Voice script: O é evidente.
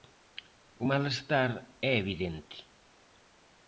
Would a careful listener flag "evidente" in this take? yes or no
no